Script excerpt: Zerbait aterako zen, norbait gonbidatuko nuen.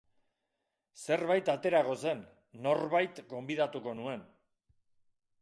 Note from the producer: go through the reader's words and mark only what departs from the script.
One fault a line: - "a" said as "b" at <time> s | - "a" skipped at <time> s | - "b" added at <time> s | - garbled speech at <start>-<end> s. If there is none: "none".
none